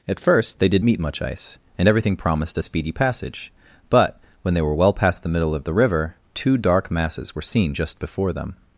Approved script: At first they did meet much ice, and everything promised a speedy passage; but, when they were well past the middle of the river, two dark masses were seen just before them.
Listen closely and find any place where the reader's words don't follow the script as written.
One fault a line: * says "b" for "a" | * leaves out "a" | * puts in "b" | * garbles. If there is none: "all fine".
all fine